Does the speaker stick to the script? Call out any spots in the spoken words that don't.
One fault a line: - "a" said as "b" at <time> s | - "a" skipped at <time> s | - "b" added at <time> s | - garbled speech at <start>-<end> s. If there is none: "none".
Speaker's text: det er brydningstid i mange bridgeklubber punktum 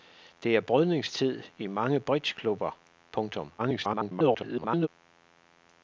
- garbled speech at 3.6-4.9 s